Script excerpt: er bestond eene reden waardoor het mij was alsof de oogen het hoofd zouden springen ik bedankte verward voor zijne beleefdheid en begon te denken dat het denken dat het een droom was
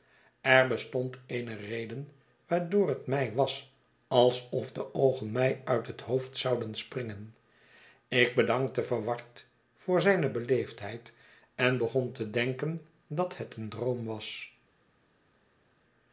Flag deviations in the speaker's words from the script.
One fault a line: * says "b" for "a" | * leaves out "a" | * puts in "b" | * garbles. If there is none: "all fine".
* puts in "mij uit"
* leaves out "denken dat het"